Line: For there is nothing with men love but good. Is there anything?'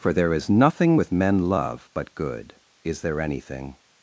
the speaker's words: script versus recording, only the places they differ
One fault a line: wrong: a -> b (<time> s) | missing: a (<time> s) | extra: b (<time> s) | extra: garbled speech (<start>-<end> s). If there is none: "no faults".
no faults